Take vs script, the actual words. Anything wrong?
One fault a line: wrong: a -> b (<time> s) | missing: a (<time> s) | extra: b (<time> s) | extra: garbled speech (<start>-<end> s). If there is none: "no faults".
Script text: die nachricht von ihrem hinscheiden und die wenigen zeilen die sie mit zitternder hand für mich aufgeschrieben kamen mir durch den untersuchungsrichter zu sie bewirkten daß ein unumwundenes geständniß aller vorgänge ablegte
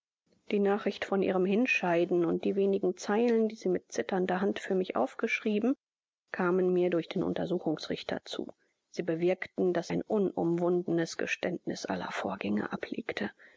no faults